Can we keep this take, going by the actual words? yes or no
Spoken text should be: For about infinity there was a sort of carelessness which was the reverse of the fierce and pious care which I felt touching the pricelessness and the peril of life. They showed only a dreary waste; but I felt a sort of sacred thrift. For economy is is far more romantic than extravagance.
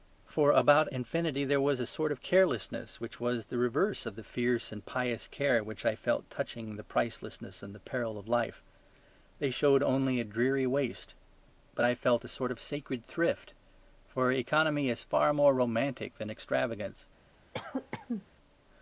no